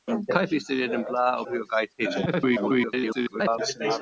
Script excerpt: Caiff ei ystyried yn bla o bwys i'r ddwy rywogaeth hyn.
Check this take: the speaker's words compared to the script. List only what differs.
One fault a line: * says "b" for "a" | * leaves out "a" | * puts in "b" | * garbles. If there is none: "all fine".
* leaves out "bwys i'r ddwy"
* garbles